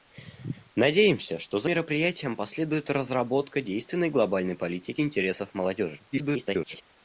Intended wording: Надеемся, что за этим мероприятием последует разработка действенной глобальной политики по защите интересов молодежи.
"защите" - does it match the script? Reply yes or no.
no